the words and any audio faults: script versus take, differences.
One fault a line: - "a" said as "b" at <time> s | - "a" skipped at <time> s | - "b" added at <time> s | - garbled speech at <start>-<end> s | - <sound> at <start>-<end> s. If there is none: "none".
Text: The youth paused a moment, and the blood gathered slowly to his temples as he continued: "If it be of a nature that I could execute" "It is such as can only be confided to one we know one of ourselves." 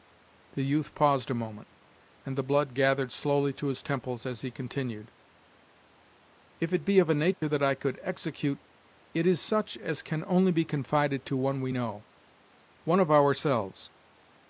- dropout at 7.3-7.4 s